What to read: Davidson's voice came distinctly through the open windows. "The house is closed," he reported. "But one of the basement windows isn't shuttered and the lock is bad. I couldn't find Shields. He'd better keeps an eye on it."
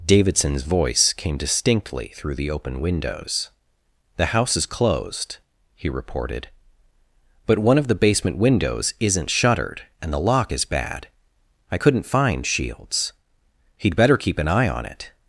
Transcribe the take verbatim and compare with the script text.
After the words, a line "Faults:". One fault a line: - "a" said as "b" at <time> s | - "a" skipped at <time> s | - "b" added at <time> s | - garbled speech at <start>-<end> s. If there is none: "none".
Davidson's voice came distinctly through the open windows. "The house is closed," he reported. "But one of the basement windows isn't shuttered and the lock is bad. I couldn't find Shields. He'd better keep an eye on it."
Faults:
- "keeps" said as "keep" at 14.2 s